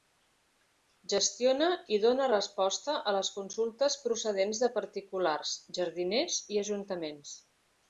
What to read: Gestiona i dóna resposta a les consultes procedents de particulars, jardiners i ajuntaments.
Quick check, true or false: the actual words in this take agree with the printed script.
true